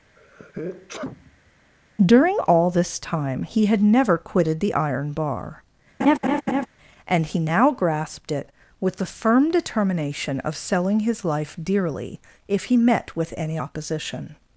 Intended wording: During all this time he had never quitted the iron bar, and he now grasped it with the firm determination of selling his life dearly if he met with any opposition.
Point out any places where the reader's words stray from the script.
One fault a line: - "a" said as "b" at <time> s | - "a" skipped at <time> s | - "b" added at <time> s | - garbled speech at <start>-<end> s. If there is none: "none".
none